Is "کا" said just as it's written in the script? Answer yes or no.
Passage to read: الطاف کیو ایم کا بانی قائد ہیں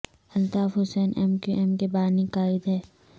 no